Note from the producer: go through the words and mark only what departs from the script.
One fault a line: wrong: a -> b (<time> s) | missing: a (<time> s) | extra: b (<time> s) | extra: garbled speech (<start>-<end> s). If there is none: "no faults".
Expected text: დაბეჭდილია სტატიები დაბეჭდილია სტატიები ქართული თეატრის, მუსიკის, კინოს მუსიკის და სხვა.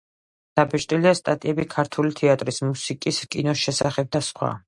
missing: დაბეჭდილია სტატიები (1.6 s)
wrong: მუსიკის -> შესახებ (3.7 s)